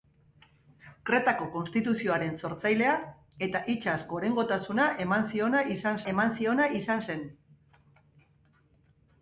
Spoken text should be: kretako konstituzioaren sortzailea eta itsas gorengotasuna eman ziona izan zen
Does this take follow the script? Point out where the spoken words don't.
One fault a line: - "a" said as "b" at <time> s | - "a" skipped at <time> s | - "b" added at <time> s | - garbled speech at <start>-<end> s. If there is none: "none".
- "eman ziona izan" added at 6.1 s